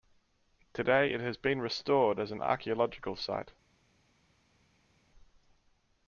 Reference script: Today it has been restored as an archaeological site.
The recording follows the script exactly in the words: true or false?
true